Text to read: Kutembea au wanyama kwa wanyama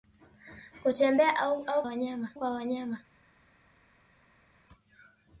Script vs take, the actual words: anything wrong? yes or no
no